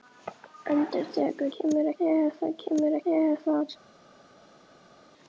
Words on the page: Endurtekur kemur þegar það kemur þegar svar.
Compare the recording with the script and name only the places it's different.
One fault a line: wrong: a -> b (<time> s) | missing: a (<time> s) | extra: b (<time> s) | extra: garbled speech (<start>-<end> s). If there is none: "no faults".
no faults